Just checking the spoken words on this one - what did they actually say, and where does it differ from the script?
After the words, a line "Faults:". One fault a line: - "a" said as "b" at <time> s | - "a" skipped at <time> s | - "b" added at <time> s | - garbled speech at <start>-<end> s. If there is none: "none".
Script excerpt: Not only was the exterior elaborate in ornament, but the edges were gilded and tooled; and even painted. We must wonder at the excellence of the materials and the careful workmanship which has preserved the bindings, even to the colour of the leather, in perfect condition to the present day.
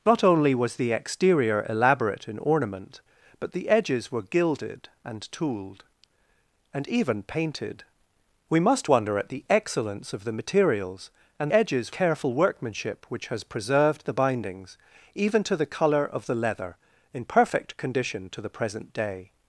Not only was the exterior elaborate in ornament, but the edges were gilded and tooled; and even painted. We must wonder at the excellence of the materials and edges careful workmanship which has preserved the bindings, even to the colour of the leather, in perfect condition to the present day.
Faults:
- "the" said as "edges" at 11.5 s